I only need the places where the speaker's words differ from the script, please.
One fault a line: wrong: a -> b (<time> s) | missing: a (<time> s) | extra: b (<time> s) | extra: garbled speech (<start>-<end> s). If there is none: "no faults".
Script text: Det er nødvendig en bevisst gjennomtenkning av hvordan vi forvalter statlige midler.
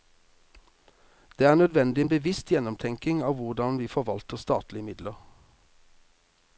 no faults